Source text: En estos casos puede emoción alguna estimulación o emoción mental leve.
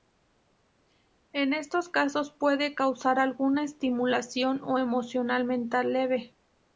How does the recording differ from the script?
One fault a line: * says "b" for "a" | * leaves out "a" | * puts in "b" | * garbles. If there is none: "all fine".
* says "causar" for "emoción"